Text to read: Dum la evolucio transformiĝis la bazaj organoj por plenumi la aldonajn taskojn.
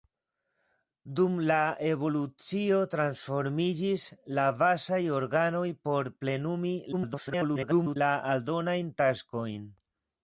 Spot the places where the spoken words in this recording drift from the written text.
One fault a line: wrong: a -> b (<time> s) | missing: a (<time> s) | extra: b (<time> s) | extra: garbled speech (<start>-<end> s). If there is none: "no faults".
extra: garbled speech (6.9-8.0 s)